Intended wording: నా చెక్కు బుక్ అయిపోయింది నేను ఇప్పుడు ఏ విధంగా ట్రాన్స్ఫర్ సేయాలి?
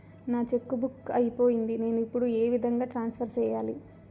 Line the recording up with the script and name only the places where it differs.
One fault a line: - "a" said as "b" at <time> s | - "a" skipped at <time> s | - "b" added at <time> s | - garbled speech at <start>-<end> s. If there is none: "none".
none